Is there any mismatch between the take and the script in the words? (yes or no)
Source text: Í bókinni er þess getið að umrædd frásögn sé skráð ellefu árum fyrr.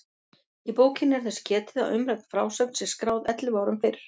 no